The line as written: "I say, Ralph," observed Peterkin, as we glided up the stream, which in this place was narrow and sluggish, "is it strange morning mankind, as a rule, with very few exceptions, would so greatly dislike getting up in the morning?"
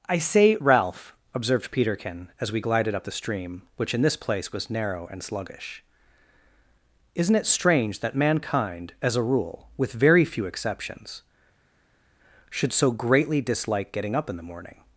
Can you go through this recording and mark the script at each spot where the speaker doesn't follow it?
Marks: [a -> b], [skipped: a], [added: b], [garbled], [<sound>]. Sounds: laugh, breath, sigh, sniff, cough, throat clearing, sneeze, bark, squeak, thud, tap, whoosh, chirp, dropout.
"I say, Ralph," observed Peterkin, as we glided up the stream, which in this place was narrow and sluggish, ["is -> isn't] it strange [morning -> that] mankind, as a rule, with very few exceptions, [would -> should] so greatly dislike getting up in the morning?"